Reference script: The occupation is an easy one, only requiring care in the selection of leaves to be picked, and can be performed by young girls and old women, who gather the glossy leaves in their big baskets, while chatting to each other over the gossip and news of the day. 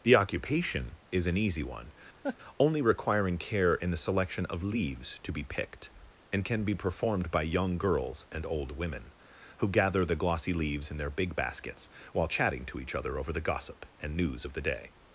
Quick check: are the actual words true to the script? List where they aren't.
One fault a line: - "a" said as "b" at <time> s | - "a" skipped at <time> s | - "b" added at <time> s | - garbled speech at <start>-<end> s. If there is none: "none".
none